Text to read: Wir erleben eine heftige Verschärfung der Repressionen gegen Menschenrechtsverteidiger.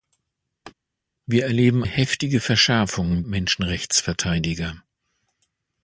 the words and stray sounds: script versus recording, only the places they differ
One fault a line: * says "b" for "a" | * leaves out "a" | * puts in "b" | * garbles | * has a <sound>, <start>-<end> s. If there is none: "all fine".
* has a laugh, 0.6-0.7 s
* leaves out "eine"
* leaves out "der Repressionen gegen"